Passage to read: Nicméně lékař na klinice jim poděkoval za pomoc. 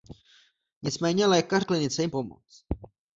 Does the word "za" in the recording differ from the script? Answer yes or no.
yes